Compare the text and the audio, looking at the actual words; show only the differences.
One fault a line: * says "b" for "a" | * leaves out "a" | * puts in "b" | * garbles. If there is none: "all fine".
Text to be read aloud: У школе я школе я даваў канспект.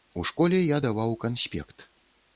* leaves out "школе я"